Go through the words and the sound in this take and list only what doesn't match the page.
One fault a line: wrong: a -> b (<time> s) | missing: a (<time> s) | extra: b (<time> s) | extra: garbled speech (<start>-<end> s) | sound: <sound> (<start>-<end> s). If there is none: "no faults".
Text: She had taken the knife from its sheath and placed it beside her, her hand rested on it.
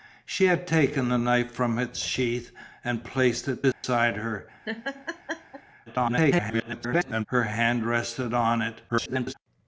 sound: dropout (3.7-3.8 s)
sound: laugh (4.6-5.6 s)
extra: garbled speech (5.9-7.3 s)
extra: garbled speech (8.9-9.3 s)